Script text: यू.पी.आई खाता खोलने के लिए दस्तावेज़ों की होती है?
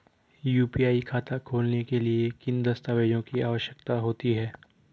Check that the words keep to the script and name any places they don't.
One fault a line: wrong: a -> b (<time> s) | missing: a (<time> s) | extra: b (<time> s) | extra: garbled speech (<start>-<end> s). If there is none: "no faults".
extra: किन (2.3 s)
extra: आवश्यकता (3.4 s)